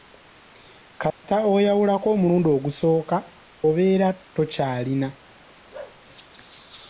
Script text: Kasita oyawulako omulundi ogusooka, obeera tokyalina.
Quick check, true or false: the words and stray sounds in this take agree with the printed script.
false